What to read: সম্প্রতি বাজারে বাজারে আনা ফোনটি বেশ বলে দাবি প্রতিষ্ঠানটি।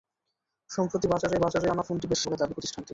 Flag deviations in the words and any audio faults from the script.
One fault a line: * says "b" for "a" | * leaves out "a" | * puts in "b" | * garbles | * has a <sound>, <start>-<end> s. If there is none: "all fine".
all fine